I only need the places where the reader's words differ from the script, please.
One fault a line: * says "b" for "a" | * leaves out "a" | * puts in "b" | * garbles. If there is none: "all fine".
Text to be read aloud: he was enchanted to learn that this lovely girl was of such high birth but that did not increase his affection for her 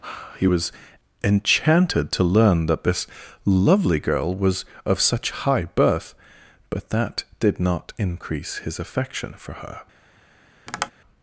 all fine